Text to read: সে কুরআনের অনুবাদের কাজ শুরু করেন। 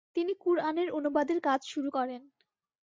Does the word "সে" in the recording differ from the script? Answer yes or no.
yes